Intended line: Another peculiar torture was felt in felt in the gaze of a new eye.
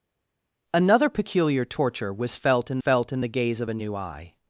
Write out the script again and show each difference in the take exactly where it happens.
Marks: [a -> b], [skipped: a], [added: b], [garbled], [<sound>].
Another peculiar torture was felt in felt in the gaze of a new eye.